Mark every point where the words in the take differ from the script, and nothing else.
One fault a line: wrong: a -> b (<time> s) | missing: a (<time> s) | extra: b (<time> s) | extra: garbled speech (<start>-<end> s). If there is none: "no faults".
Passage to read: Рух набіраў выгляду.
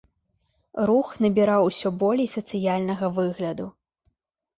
extra: усё болей сацыяльнага (1.7 s)